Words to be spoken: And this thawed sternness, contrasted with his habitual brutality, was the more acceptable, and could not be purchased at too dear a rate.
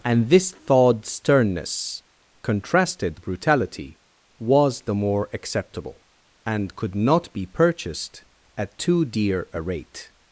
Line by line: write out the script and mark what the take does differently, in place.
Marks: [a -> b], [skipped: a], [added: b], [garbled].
And this thawed sternness, contrasted [skipped: with his habitual] brutality, was the more acceptable, and could not be purchased at too dear a rate.